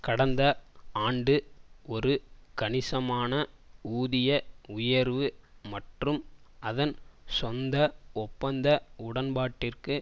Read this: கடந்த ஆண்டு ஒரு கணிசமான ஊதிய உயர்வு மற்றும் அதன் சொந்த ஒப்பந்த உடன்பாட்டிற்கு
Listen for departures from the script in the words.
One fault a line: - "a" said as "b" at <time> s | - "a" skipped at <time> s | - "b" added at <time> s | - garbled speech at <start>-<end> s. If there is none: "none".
none